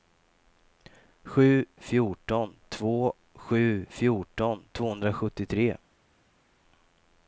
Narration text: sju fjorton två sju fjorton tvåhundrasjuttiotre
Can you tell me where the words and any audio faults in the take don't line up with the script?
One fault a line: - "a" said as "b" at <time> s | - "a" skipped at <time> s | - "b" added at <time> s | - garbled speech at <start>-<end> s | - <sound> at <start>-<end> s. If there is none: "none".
none